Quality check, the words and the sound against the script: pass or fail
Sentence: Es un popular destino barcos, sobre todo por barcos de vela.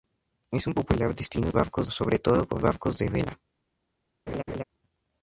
fail